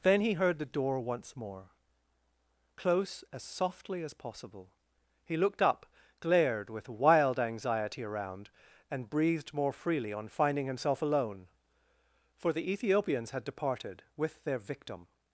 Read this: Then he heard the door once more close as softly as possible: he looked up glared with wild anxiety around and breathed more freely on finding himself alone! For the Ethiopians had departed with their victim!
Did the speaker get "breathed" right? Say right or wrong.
right